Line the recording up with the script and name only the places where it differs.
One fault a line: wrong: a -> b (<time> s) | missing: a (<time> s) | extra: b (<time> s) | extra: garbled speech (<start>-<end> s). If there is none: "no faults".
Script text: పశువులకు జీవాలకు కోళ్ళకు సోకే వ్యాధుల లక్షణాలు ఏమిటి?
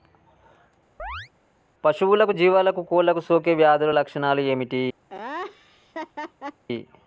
no faults